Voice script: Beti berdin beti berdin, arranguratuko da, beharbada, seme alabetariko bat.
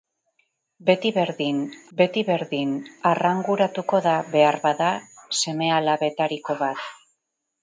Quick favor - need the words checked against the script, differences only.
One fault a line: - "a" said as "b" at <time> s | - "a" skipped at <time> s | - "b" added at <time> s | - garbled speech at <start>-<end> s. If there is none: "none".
none